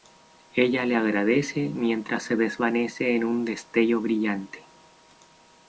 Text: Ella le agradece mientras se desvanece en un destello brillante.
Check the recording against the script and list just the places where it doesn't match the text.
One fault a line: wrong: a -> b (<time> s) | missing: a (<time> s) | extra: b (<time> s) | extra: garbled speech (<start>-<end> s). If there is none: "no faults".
no faults